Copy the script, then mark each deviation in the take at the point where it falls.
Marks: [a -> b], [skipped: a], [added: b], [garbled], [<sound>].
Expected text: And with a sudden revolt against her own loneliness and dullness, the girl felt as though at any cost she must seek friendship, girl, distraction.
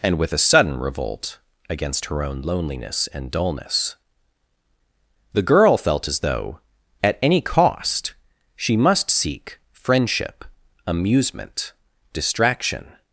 And with a sudden revolt against her own loneliness and dullness, the girl felt as though at any cost she must seek friendship, [girl, -> amusement] distraction.